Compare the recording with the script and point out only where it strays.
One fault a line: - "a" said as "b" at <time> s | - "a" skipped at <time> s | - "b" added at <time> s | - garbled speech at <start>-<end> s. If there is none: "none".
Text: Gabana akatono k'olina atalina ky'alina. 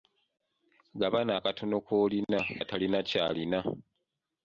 none